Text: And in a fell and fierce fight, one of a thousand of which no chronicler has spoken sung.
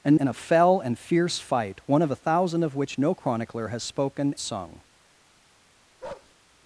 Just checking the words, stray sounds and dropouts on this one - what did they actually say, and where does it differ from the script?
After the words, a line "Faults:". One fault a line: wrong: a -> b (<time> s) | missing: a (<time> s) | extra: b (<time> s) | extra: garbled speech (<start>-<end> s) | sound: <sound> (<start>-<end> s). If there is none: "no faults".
And in a fell and fierce fight, one of a thousand of which no chronicler has spoken sung.
Faults:
sound: bark (6.0-6.3 s)